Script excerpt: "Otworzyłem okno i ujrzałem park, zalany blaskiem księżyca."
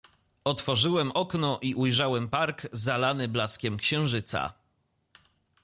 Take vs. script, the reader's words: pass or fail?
pass